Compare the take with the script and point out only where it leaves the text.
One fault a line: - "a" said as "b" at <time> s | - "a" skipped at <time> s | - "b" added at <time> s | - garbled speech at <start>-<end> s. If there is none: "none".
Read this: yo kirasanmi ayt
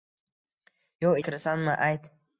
none